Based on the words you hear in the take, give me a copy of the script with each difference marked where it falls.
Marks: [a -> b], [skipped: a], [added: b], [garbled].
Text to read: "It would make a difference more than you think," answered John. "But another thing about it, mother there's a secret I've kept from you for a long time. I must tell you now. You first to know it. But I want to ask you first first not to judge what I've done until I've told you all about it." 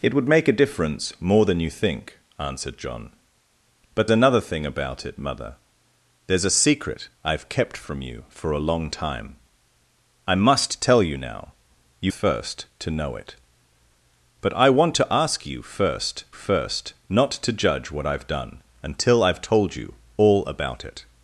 "It would make a difference more than you think," answered John. "But another thing about it, mother there's a secret I've kept from you for a long time. I must tell you now. You first to know it. But I want to ask you first first not to judge what I've done until I've told you all about it."